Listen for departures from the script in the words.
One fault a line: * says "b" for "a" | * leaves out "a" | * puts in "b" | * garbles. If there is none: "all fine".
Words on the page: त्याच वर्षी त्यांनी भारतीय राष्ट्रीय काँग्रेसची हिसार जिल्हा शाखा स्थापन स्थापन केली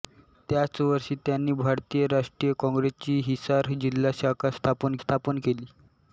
all fine